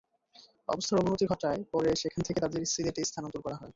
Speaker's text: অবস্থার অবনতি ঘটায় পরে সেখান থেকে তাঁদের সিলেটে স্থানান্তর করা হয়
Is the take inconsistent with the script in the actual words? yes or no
no